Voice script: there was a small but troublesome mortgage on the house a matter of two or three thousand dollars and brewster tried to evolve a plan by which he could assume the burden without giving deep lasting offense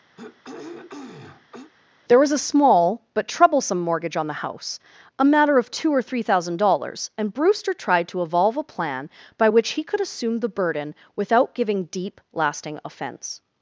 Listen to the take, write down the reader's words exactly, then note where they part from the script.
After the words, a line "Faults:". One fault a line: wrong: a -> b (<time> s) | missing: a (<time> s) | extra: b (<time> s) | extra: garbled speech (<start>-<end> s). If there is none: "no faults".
there was a small but troublesome mortgage on the house a matter of two or three thousand dollars and brewster tried to evolve a plan by which he could assume the burden without giving deep lasting offense
Faults:
no faults